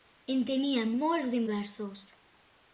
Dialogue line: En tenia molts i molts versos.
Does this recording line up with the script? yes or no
no